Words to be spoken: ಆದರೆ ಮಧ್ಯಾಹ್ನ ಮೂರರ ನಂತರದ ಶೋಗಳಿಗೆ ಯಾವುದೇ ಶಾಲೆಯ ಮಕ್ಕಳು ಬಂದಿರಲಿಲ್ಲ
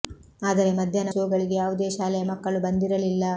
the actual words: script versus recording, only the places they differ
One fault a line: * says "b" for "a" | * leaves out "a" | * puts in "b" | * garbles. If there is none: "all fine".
* leaves out "ಮೂರರ ನಂತರದ"